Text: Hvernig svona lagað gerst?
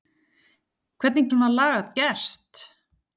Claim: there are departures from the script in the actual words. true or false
false